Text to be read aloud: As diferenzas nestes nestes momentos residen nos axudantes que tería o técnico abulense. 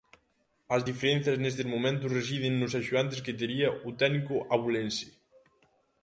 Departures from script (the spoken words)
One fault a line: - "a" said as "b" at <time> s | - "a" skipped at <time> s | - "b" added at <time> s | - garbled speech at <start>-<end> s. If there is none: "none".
- "nestes" skipped at 1.7 s